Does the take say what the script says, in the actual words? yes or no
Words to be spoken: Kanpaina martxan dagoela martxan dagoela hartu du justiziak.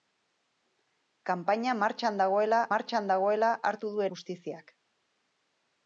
yes